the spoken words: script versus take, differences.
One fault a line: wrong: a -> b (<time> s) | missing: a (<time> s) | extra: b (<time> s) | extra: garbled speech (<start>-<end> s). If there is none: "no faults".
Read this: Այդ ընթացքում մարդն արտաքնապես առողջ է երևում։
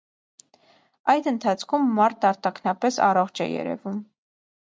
no faults